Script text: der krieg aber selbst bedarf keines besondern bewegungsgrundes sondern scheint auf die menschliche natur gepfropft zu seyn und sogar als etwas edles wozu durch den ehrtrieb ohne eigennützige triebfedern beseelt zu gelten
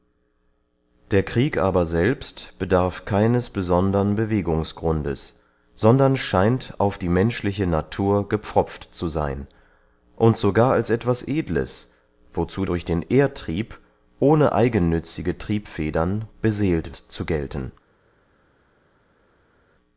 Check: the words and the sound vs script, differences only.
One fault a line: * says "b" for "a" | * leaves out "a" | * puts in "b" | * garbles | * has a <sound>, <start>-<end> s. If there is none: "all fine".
all fine